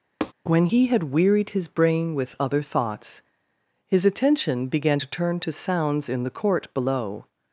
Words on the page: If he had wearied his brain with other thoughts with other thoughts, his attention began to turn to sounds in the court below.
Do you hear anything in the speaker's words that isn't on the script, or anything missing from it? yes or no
yes